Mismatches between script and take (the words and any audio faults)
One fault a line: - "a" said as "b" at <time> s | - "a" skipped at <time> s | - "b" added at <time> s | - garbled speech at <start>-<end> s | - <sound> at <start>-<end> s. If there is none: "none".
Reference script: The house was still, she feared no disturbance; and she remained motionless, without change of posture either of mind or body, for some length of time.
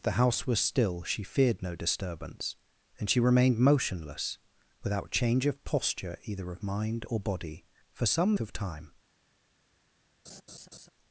- "length" skipped at 8.4 s
- laugh at 10.2-10.9 s